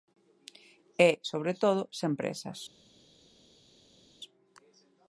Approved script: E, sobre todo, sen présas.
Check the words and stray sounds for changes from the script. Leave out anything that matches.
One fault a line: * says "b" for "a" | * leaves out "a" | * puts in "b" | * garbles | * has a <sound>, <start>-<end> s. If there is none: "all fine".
all fine